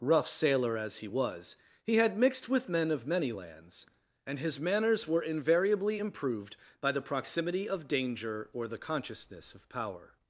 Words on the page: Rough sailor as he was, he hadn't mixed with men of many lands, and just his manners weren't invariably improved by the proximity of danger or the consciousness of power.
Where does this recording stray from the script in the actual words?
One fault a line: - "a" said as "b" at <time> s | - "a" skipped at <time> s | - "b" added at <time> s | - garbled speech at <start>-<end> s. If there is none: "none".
- "hadn't" said as "had" at 2.0 s
- "just" skipped at 4.4 s
- "weren't" said as "were" at 5.1 s